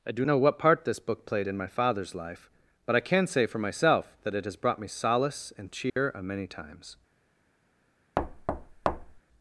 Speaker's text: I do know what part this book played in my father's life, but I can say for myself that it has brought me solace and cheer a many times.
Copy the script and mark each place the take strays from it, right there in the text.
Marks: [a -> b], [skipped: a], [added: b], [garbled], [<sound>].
I do know what part this book played in my father's life, but I can say for myself that it has brought me solace and cheer [dropout] a many times. [thud]